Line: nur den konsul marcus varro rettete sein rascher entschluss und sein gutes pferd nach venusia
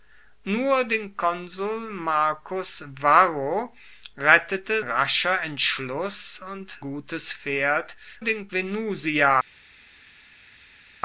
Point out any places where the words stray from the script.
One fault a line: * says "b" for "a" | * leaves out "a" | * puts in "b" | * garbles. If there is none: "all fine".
* leaves out "sein"
* leaves out "sein"
* says "den" for "nach"